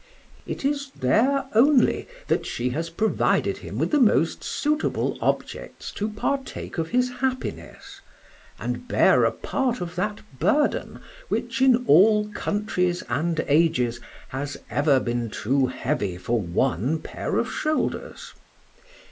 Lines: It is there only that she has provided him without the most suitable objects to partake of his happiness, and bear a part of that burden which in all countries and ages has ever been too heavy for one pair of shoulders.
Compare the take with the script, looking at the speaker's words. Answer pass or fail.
fail